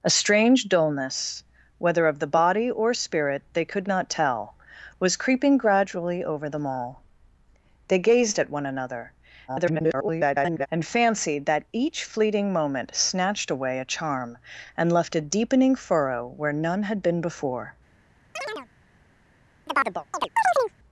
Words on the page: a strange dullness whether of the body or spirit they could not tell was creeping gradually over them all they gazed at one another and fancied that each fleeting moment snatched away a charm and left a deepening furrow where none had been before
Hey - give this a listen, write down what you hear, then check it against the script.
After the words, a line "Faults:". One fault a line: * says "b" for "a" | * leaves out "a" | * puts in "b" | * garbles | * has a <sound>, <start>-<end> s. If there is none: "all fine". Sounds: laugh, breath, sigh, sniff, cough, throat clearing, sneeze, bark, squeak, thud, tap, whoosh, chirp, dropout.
a strange dullness whether of the body or spirit they could not tell was creeping gradually over them all they gazed at one another [garbled] and fancied that each fleeting moment snatched away a charm and left a deepening furrow where none had been before
Faults:
* garbles
* has a chirp, 18.4-18.7 s
* has a chirp, 19.7-20.7 s